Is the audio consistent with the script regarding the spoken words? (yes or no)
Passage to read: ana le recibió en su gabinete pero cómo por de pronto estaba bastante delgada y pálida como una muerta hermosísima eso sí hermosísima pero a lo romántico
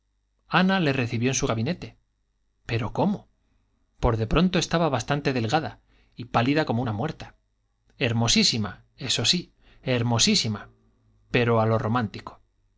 yes